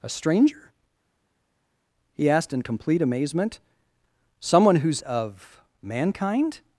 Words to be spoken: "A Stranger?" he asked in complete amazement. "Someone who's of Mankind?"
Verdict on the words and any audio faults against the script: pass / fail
pass